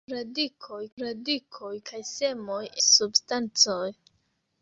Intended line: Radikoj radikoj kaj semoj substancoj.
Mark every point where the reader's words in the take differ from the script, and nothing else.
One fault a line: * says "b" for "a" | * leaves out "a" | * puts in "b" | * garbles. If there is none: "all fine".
all fine